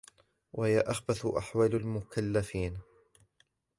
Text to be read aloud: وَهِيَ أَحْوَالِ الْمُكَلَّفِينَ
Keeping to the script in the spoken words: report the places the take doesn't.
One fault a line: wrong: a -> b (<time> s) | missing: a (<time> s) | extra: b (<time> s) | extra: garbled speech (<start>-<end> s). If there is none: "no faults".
extra: أَخْبَثُ (0.8 s)